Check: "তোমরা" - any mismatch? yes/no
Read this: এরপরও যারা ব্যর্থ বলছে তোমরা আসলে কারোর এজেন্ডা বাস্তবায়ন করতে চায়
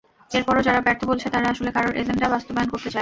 yes